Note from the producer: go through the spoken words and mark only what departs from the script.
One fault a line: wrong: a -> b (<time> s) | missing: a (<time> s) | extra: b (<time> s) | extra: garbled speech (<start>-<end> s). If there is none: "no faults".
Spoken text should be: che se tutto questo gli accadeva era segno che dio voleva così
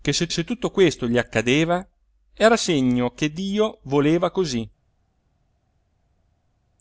extra: se (0.3 s)